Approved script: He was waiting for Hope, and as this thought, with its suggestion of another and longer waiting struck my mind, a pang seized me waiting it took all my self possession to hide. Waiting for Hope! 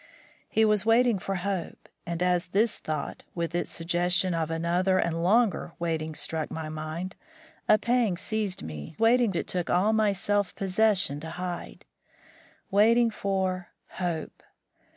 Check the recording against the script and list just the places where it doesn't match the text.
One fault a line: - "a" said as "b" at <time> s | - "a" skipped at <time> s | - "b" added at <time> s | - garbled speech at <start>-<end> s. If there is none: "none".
none